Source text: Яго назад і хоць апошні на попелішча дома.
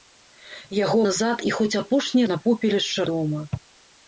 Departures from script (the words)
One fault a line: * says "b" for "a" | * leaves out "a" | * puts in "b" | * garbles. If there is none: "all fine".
all fine